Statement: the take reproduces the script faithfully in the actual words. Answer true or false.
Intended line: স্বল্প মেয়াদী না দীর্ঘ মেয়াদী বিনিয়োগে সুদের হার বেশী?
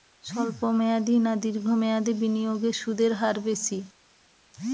true